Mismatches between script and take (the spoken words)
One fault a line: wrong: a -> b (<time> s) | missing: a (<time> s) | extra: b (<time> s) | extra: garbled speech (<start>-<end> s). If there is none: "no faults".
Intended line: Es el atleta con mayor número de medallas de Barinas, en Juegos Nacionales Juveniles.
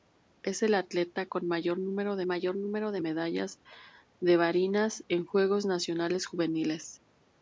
extra: mayor número de (2.3 s)